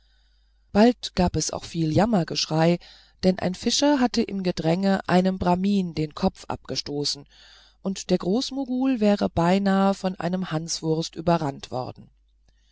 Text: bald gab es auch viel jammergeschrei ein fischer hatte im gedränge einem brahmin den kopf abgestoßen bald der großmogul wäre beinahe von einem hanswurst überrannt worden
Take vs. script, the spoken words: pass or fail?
fail